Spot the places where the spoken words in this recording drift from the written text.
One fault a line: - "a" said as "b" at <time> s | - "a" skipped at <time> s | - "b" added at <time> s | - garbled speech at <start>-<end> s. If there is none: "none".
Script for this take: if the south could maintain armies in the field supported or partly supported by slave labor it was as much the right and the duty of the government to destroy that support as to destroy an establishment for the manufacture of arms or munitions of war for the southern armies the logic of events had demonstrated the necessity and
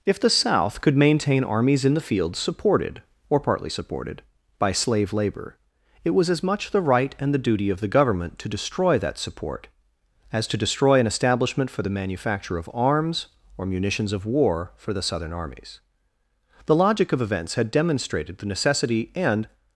none